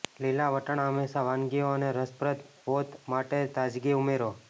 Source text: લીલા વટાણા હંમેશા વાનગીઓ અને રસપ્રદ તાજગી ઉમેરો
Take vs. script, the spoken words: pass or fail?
fail